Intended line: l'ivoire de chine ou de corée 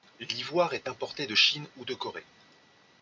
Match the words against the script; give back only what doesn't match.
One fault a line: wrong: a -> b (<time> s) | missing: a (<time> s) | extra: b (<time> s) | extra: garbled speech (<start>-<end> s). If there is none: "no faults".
extra: est importé (0.7 s)